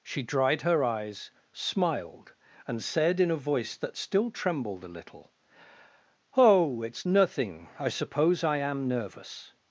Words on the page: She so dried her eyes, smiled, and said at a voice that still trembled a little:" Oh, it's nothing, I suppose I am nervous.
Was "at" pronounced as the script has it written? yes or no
no